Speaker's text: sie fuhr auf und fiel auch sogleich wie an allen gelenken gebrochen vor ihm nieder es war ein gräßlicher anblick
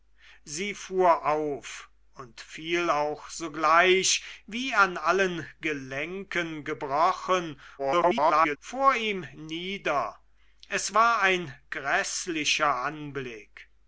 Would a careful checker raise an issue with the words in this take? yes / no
yes